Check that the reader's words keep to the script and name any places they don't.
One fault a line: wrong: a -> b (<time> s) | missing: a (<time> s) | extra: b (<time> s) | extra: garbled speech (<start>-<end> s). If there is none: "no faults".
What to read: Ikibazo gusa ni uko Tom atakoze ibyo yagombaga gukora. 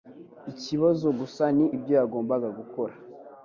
missing: uko Tom atakoze (1.6 s)